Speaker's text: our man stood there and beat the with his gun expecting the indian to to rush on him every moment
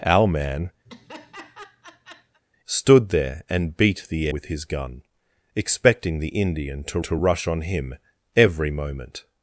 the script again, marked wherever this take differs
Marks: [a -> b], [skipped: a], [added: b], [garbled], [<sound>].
our man [laugh] stood there and beat the with his gun expecting the indian to to rush on him every moment